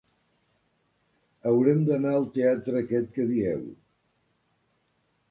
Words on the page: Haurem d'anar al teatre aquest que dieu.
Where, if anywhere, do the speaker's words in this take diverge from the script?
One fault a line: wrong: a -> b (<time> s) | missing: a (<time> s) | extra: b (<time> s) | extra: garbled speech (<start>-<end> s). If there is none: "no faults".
no faults